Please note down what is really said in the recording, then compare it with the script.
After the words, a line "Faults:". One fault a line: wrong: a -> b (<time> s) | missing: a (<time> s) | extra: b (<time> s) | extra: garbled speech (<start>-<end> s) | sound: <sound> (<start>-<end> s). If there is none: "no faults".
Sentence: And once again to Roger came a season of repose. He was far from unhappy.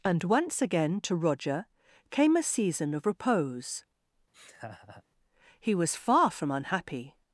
And once again to Roger came a season of repose. He was far from unhappy.
Faults:
sound: laugh (4.3-5.0 s)